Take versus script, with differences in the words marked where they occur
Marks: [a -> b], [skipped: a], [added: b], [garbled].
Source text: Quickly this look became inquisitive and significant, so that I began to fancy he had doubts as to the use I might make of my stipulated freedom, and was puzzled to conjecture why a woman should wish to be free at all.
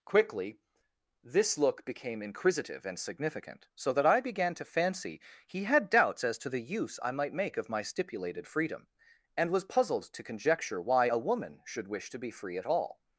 Quickly this look became inquisitive and significant, so that I began to fancy he had doubts as to the use I might make of my stipulated freedom, and was puzzled to conjecture why a woman should wish to be free at all.